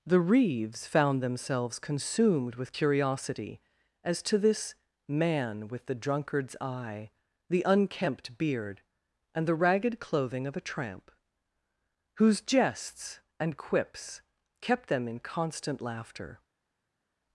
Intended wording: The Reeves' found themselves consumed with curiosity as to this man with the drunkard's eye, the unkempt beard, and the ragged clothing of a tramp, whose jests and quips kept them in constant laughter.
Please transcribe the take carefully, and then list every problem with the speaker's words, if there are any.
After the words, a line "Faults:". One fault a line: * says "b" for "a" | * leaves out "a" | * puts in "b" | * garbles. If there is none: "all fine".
The Reeves' found themselves consumed with curiosity as to this man with the drunkard's eye, the unkempt beard, and the ragged clothing of a tramp, whose jests and quips kept them in constant laughter.
Faults:
all fine